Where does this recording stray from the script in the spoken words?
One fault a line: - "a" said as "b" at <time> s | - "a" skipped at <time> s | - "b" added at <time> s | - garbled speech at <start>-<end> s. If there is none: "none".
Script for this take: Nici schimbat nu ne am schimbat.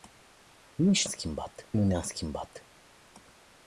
none